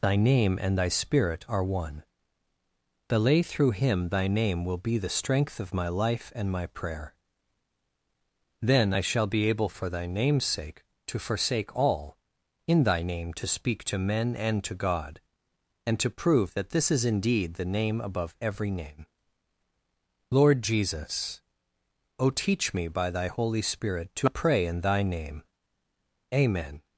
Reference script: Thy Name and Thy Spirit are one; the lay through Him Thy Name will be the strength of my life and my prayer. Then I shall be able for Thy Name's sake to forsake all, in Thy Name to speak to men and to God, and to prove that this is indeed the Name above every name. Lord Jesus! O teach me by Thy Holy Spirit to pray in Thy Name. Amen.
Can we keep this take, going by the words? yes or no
yes